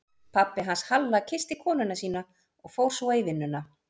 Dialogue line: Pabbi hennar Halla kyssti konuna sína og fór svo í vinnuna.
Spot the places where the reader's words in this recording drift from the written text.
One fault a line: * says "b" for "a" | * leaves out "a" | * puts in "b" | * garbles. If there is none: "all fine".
* says "hans" for "hennar"